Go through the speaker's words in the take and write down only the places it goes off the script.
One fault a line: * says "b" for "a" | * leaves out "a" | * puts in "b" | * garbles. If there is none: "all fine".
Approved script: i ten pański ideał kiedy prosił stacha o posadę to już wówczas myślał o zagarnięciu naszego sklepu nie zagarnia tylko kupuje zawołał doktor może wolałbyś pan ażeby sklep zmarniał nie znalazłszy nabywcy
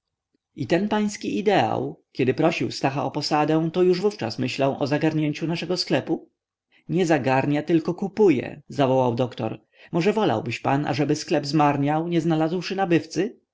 all fine